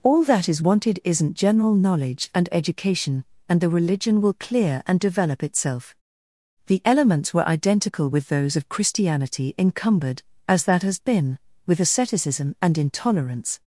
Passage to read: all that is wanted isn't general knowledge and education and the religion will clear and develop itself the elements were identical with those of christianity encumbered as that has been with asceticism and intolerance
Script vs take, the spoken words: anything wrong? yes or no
no